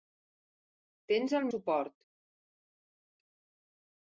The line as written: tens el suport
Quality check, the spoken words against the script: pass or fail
pass